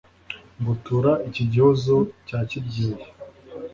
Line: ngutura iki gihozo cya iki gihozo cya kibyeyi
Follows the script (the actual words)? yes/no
no